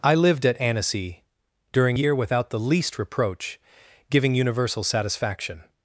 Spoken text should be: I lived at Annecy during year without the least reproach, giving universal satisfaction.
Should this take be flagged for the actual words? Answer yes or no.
no